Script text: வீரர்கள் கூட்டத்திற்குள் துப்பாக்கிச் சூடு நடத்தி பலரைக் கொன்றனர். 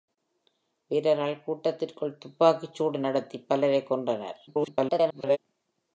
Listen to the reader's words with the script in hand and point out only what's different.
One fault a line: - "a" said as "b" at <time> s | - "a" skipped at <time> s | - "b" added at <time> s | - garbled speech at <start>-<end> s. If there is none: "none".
- garbled speech at 4.5-5.4 s